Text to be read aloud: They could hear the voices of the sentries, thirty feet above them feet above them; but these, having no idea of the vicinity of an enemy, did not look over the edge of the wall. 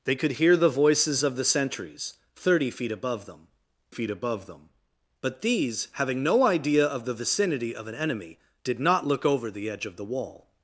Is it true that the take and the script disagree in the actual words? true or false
false